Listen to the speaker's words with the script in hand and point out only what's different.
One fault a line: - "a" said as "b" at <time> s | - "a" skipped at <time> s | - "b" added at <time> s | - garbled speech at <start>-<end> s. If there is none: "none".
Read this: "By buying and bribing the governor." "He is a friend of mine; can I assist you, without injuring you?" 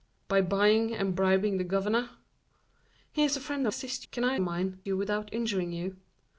- "mine" said as "assist" at 3.7 s
- "assist" said as "mine" at 4.4 s